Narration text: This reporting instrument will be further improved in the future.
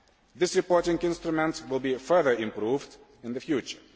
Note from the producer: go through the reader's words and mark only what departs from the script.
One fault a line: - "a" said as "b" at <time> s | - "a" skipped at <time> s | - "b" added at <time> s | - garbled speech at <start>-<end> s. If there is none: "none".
none